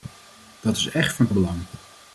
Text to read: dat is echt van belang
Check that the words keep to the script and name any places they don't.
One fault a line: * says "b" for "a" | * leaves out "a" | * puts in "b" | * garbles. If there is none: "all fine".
all fine